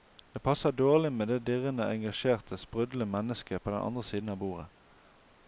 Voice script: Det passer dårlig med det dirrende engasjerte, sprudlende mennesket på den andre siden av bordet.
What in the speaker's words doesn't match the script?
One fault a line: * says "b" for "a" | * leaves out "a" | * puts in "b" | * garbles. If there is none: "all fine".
all fine